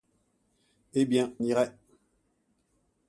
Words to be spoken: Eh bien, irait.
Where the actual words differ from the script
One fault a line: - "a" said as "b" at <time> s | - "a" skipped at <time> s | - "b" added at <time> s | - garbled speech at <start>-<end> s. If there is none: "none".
none